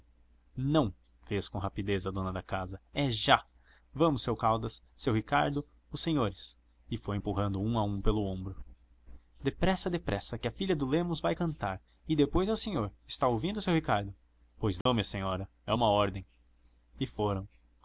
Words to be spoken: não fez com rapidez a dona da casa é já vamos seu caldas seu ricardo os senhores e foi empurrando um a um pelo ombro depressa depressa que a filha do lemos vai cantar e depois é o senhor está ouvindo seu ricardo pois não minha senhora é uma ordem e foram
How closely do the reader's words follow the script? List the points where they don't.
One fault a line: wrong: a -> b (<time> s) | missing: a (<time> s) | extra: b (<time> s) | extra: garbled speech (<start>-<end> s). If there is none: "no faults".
no faults